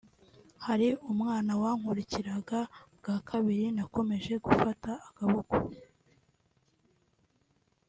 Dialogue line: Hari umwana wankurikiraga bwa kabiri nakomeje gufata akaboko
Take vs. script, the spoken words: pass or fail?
pass